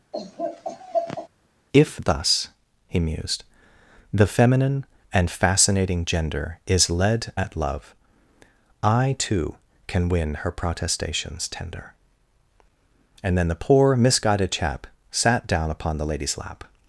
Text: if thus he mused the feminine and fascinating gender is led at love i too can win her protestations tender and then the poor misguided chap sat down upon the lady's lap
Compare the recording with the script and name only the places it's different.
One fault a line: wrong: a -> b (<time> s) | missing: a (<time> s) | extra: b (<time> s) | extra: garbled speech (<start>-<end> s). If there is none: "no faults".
no faults